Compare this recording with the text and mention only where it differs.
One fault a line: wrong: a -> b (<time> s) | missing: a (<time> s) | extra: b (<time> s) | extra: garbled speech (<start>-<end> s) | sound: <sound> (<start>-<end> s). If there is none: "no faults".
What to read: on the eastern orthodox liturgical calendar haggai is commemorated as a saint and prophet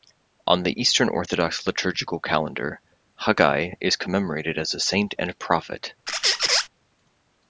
sound: squeak (6.1-6.7 s)